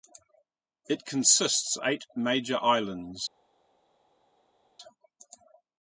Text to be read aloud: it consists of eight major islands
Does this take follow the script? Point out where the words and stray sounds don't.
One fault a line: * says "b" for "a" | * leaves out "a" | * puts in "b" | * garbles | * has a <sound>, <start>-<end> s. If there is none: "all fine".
* leaves out "of"